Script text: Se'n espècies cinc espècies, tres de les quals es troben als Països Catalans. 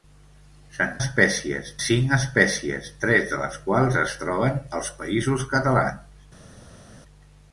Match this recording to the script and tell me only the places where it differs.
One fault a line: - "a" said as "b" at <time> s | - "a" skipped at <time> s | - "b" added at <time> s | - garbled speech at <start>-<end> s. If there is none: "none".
none